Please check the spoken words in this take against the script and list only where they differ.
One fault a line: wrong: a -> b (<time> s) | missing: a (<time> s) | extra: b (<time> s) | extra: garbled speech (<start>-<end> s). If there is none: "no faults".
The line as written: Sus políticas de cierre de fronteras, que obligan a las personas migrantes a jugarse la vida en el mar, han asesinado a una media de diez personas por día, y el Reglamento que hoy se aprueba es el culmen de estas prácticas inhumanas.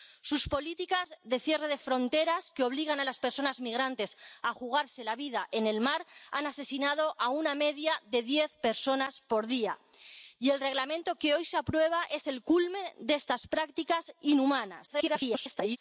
extra: garbled speech (14.9-15.8 s)